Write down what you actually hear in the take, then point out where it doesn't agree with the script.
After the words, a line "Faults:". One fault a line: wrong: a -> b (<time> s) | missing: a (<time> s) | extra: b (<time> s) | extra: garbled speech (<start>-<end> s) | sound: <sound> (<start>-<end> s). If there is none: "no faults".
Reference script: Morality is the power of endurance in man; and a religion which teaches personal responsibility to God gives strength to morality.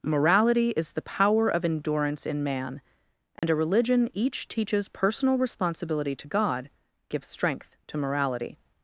Morality is the power of endurance in man; and a religion each teaches personal responsibility to God gives strength to morality.
Faults:
sound: dropout (3.4-3.4 s)
wrong: which -> each (4.1 s)